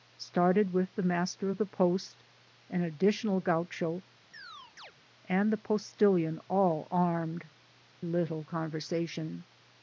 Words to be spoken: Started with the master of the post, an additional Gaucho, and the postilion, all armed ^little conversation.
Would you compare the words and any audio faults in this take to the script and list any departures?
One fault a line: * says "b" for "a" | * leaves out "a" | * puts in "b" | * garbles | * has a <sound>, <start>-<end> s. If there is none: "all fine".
* has a chirp, 4.3-4.9 s